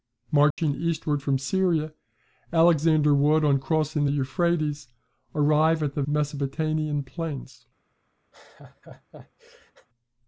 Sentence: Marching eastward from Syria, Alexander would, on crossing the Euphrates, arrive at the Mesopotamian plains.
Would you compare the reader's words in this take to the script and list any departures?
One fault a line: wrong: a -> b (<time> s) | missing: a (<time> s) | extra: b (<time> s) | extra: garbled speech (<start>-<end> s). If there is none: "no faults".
no faults